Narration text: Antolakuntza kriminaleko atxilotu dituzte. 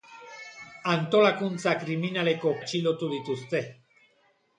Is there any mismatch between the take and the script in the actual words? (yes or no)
no